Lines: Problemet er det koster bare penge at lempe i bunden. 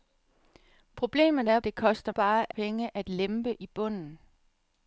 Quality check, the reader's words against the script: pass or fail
pass